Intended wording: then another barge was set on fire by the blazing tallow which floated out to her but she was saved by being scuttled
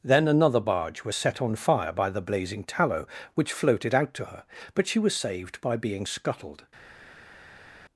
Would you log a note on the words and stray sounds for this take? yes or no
no